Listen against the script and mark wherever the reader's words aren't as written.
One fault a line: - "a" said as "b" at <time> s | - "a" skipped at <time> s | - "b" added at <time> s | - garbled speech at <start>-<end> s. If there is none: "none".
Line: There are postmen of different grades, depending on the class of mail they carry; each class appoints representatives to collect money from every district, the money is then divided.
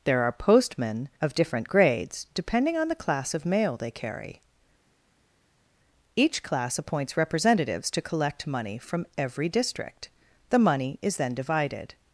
none